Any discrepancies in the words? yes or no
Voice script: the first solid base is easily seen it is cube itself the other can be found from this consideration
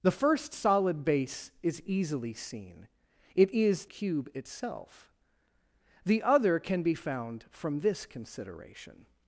no